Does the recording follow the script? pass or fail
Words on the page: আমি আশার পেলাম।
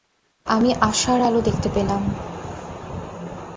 fail